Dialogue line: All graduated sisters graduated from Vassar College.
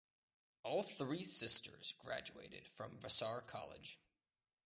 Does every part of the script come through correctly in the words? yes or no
no